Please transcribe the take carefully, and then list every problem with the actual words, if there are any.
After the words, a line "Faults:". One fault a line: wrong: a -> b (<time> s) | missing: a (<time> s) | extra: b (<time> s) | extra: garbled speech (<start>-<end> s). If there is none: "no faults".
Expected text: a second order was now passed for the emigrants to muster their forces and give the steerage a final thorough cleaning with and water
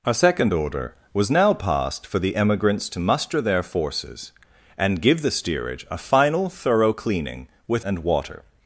a second order was now passed for the emigrants to muster their forces and give the steerage a final thorough cleaning with and water
Faults:
no faults